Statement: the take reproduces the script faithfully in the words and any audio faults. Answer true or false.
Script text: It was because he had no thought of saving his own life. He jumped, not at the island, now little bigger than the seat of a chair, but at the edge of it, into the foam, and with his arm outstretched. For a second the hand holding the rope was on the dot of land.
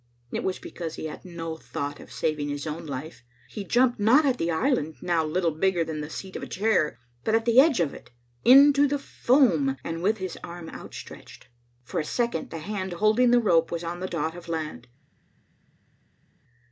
true